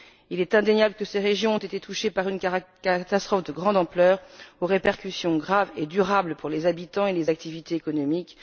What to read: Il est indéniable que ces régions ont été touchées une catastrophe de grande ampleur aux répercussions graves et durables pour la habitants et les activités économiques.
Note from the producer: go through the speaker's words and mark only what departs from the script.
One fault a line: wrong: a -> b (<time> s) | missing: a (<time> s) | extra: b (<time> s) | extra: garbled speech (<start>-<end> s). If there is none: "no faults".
extra: par (2.1 s)
wrong: la -> les (6.5 s)